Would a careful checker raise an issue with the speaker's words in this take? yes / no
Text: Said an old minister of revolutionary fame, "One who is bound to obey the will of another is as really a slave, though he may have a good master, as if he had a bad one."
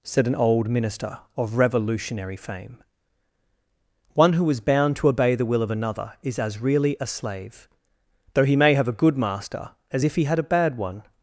no